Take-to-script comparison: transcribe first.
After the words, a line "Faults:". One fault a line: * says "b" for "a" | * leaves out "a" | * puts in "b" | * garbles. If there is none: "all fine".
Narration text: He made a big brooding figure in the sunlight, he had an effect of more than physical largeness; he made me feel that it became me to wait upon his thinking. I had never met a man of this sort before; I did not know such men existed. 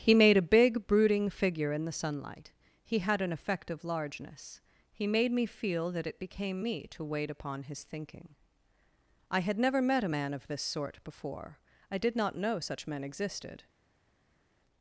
He made a big brooding figure in the sunlight, he had an effect of largeness; he made me feel that it became me to wait upon his thinking. I had never met a man of this sort before; I did not know such men existed.
Faults:
* leaves out "more than physical"